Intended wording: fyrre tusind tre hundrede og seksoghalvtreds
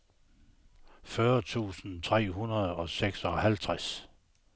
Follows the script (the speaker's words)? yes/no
yes